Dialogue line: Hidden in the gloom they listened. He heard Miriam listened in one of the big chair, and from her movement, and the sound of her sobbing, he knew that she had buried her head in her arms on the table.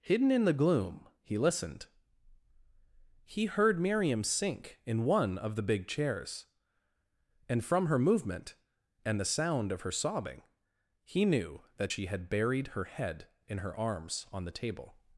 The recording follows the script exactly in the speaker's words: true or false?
false